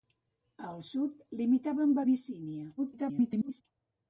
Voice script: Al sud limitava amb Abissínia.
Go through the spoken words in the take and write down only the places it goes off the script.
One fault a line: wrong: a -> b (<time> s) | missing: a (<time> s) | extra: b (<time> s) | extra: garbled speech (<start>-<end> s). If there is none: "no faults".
extra: garbled speech (2.8-3.6 s)